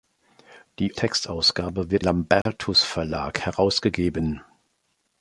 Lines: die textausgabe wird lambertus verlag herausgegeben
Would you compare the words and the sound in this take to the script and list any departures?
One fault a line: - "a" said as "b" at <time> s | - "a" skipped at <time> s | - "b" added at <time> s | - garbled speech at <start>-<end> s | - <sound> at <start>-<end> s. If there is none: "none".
- dropout at 2.4-2.5 s